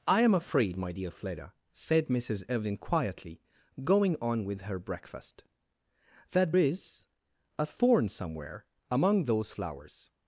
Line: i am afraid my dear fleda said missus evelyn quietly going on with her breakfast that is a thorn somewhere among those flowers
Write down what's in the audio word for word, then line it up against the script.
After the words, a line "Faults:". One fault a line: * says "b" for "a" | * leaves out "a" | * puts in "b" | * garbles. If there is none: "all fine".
i am afraid my dear fleda said missus evelyn quietly going on with her breakfast that is a thorn somewhere among those flowers
Faults:
all fine